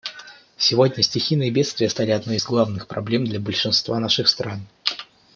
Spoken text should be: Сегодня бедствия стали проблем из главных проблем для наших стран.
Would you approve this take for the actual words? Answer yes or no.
no